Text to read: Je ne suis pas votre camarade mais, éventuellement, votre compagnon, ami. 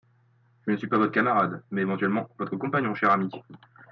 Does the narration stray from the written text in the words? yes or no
yes